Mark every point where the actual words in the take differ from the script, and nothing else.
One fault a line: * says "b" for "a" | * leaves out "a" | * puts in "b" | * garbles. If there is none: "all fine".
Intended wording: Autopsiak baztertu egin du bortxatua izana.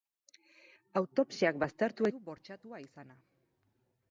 * leaves out "egin"